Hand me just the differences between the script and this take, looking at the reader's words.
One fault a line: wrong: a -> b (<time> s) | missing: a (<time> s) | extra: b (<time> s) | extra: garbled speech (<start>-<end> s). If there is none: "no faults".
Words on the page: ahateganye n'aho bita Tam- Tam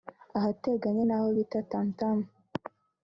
no faults